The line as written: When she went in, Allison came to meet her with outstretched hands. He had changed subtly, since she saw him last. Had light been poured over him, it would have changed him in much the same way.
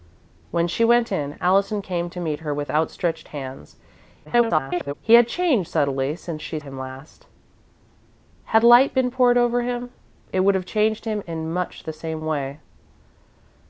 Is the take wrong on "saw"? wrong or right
wrong